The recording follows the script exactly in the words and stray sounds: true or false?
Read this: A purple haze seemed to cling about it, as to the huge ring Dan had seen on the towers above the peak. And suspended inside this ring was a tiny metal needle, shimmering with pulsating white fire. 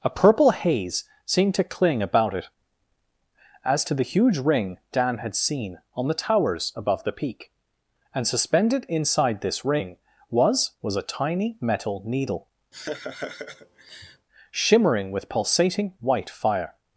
false